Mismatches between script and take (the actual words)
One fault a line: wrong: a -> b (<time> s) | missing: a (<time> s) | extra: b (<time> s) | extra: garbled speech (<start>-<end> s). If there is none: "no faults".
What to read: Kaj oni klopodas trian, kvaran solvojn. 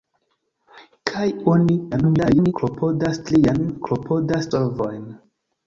extra: garbled speech (1.9-2.5 s)
wrong: kvaran -> klopodas (3.9 s)